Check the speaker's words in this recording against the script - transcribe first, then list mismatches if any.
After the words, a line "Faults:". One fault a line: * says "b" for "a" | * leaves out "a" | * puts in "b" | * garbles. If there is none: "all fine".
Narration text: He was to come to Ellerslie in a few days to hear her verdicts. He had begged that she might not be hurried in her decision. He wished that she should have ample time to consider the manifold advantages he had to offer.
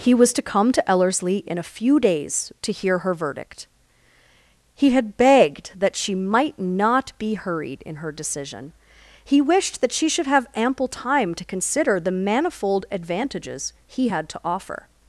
He was to come to Ellerslie in a few days to hear her verdict. He had begged that she might not be hurried in her decision. He wished that she should have ample time to consider the manifold advantages he had to offer.
Faults:
* says "verdict" for "verdicts"